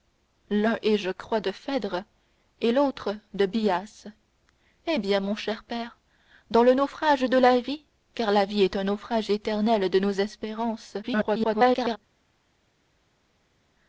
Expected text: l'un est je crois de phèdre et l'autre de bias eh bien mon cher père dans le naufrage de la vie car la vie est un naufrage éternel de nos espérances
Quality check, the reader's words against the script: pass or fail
fail